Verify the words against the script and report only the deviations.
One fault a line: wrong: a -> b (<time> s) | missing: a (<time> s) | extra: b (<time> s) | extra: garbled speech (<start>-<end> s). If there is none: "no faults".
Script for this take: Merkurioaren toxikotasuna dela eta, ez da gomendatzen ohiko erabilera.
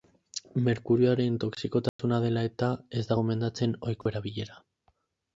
no faults